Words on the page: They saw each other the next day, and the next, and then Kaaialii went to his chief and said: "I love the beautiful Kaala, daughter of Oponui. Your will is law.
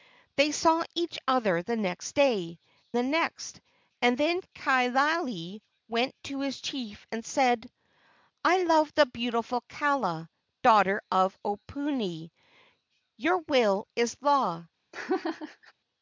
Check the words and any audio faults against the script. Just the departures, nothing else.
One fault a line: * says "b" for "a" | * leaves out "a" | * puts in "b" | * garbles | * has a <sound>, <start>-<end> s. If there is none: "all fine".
* leaves out "and"
* has a laugh, 14.9-15.7 s